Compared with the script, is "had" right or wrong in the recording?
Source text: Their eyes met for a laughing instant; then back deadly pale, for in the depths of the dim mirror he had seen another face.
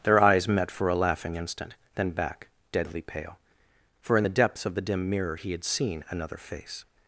right